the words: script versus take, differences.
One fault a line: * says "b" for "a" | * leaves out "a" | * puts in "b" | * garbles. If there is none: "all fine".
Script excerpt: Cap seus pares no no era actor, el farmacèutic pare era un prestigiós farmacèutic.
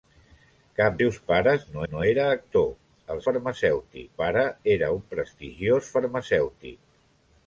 all fine